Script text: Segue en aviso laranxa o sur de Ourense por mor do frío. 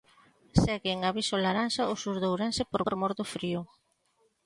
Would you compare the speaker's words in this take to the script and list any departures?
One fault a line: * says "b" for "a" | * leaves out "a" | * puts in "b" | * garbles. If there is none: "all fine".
* puts in "por"